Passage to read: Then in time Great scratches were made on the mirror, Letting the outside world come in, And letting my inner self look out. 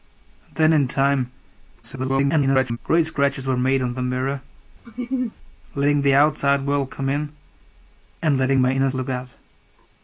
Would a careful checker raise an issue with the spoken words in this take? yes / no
yes